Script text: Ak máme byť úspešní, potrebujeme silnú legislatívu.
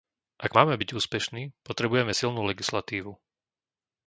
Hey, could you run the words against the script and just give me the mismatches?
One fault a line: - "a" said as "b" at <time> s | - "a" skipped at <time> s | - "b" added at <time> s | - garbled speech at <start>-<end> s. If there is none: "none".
none